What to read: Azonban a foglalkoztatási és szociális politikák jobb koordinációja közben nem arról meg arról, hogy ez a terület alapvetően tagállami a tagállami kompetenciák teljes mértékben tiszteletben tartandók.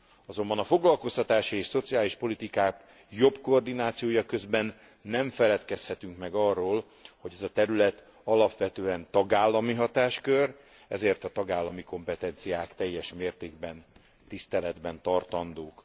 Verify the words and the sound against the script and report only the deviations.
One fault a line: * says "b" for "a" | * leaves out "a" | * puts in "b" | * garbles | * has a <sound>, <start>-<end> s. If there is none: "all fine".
* says "feledkezhetünk" for "arról"
* puts in "hatáskör ezért"